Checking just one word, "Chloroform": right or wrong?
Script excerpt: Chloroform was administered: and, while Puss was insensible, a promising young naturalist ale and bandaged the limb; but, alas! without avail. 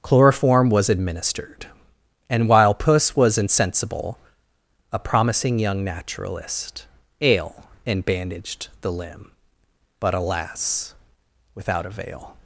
right